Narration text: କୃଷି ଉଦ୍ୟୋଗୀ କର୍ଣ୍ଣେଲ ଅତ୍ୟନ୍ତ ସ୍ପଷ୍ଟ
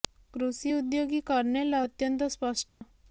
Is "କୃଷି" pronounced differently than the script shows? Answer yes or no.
no